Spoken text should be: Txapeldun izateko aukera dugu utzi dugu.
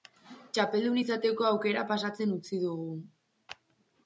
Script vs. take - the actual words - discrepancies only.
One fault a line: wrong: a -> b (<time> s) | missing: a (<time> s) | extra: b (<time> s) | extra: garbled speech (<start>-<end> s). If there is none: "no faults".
wrong: dugu -> pasatzen (1.9 s)